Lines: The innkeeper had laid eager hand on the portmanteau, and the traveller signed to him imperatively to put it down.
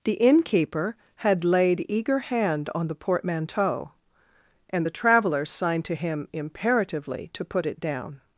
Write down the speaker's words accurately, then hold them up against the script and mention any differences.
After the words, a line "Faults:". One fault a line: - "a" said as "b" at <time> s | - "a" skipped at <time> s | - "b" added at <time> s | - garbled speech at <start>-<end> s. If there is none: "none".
The innkeeper had laid eager hand on the portmanteau, and the traveller signed to him imperatively to put it down.
Faults:
none